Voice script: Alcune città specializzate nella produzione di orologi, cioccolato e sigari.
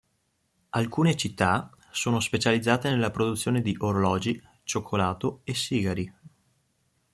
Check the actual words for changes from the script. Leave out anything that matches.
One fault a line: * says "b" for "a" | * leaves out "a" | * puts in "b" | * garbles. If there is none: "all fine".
* puts in "sono"